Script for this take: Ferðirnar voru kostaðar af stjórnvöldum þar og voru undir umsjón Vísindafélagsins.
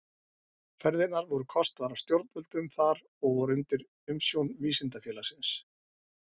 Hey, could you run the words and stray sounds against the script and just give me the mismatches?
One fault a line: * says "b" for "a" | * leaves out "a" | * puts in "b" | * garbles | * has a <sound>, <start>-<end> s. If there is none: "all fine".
all fine